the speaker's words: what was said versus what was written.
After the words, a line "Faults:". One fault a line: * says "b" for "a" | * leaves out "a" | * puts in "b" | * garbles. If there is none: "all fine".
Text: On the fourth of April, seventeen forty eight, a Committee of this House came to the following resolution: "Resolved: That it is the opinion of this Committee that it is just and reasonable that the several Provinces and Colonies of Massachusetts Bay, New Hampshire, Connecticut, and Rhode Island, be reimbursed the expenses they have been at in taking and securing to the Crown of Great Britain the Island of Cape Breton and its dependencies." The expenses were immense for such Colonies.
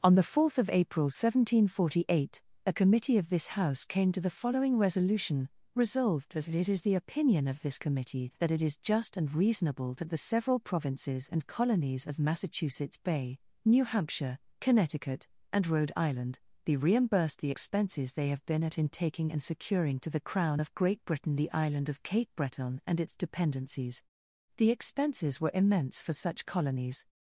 On the fourth of April, seventeen forty eight, a Committee of this House came to the following resolution: "Resolved: That it is the opinion of this Committee that it is just and reasonable that the several Provinces and Colonies of Massachusetts Bay, New Hampshire, Connecticut, and Rhode Island, be reimbursed the expenses they have been at in taking and securing to the Crown of Great Britain the Island of Cape Breton and its dependencies." The expenses were immense for such Colonies.
Faults:
all fine